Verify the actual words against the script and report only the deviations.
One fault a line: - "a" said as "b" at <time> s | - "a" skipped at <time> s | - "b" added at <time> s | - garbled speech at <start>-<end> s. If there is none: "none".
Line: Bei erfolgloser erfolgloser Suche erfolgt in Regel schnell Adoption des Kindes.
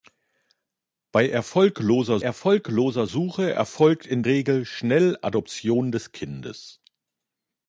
none